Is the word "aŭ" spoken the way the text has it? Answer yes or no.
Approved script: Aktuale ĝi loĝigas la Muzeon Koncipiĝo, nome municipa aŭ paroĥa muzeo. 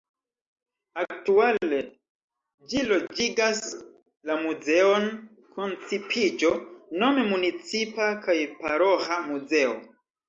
no